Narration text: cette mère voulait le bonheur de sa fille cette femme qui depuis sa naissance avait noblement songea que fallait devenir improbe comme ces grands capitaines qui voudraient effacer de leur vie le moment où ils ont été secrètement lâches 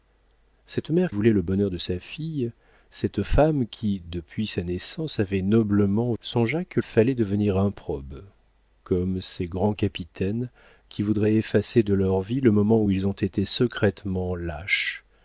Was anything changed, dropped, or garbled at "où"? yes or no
no